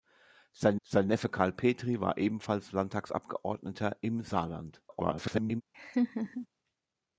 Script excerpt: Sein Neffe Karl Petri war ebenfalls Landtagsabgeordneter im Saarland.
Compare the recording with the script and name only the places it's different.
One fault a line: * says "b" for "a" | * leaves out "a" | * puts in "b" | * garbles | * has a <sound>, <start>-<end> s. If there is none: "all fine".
* puts in "sein"
* garbles
* has a laugh, 5.7-6.5 s